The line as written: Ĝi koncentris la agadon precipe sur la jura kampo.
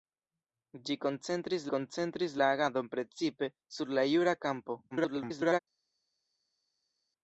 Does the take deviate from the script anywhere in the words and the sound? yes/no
yes